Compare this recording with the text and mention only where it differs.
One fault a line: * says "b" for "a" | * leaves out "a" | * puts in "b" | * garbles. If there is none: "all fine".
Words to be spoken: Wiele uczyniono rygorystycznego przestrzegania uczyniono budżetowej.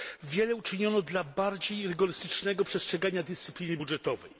* puts in "dla bardziej"
* says "dyscypliny" for "uczyniono"